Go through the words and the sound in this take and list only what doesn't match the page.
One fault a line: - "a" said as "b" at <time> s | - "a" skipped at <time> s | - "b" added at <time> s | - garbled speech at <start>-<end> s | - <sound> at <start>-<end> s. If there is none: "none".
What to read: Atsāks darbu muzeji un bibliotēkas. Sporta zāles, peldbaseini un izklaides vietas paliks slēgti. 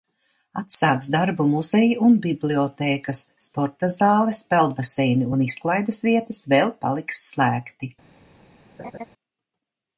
- "vēl" added at 6.6 s
- laugh at 8.8-9.1 s